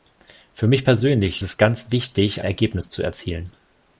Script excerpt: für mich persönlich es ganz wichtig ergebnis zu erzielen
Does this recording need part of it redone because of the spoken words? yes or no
no